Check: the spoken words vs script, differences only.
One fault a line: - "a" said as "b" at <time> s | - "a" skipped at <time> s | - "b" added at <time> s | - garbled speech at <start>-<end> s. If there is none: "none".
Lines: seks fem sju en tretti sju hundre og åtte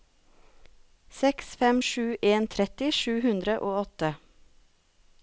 none